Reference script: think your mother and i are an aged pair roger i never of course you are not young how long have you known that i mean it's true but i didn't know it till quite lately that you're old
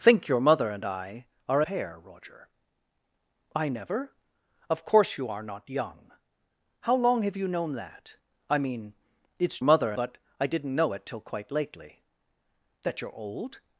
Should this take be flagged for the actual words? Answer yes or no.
yes